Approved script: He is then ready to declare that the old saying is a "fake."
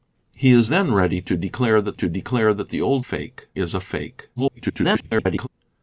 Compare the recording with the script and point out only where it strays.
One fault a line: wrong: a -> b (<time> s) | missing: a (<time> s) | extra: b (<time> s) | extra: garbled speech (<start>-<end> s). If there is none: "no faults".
extra: to declare that (1.9 s)
wrong: saying -> fake (3.0 s)
extra: garbled speech (4.4-5.5 s)